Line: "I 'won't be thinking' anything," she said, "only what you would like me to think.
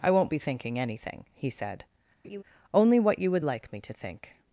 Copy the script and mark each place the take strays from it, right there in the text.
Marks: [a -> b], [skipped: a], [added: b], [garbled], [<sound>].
"I 'won't be thinking' anything," [she -> he] said, [laugh] "only what you would like me to think.